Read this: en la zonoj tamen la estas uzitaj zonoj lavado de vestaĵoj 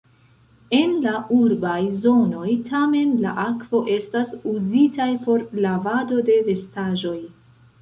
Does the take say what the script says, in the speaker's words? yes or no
no